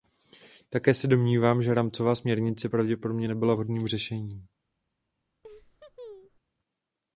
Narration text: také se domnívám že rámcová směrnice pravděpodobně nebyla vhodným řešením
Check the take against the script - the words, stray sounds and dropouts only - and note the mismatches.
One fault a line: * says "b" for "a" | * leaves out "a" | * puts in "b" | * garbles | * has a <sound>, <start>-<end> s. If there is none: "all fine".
* has a laugh, 5.4-6.4 s